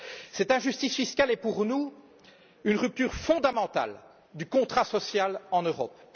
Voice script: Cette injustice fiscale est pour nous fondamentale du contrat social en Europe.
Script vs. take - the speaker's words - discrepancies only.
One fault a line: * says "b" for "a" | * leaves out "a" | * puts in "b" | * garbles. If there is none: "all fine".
* puts in "une rupture"